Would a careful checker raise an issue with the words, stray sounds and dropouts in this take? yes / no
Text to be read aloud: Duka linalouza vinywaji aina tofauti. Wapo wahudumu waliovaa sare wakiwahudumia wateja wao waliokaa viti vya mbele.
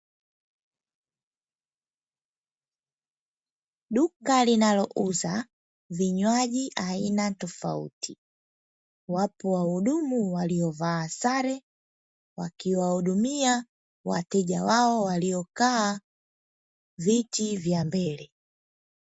no